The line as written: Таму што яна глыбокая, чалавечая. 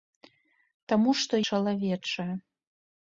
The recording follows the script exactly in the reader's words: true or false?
false